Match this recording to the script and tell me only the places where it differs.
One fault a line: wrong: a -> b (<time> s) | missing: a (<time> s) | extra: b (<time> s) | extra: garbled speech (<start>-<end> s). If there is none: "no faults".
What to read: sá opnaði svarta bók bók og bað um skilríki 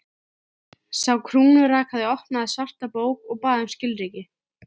extra: krúnurakaði (1.3 s)
missing: bók (3.3 s)